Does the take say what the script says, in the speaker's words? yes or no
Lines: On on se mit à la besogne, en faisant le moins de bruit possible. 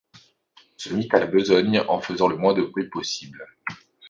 no